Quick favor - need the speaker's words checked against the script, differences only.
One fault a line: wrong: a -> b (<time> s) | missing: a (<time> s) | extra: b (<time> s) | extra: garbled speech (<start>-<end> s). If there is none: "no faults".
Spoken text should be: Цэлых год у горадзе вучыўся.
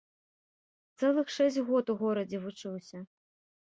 extra: шэсць (1.4 s)